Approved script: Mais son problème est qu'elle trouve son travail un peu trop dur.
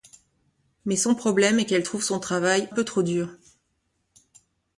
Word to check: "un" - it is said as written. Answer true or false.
false